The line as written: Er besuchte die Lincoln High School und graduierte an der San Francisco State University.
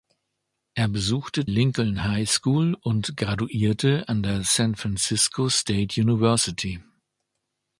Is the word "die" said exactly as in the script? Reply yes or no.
no